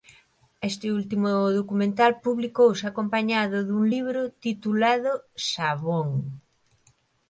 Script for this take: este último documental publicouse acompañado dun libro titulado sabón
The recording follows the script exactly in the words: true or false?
true